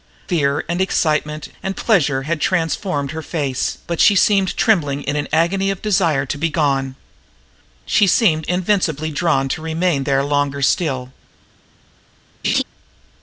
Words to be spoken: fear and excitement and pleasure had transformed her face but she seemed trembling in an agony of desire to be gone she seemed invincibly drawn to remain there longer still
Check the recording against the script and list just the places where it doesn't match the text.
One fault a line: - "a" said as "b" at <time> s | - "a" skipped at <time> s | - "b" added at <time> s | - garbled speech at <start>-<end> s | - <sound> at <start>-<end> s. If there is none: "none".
- laugh at 12.4-12.6 s